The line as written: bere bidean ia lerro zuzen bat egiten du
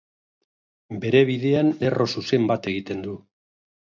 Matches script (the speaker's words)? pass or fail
fail